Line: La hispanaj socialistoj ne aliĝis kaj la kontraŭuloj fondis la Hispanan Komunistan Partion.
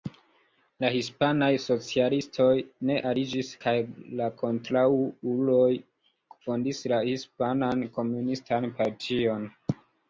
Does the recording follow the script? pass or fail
pass